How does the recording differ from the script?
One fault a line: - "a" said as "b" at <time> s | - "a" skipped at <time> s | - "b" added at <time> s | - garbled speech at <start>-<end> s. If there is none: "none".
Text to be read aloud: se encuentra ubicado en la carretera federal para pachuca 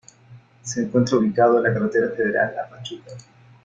- "para" said as "a" at 2.6 s